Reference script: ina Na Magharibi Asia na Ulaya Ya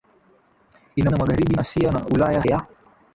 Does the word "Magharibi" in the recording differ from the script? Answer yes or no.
no